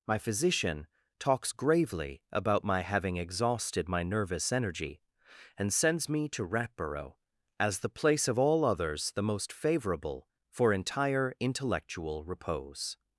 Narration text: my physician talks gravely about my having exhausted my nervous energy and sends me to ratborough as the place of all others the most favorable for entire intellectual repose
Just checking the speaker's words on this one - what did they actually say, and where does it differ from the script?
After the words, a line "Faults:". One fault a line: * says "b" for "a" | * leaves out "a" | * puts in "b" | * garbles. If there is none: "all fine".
my physician talks gravely about my having exhausted my nervous energy and sends me to ratborough as the place of all others the most favorable for entire intellectual repose
Faults:
all fine